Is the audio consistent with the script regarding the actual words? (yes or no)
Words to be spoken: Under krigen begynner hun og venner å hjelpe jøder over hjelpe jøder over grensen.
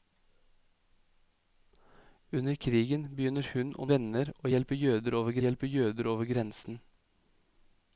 yes